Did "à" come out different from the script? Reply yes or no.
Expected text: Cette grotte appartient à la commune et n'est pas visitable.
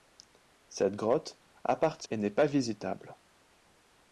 yes